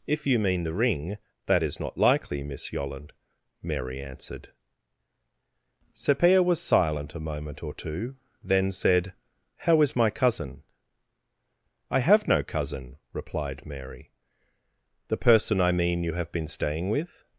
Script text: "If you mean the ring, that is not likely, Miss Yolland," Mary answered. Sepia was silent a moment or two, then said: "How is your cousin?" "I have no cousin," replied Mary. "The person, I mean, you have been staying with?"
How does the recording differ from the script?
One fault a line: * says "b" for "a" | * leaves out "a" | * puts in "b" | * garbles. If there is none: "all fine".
* says "my" for "your"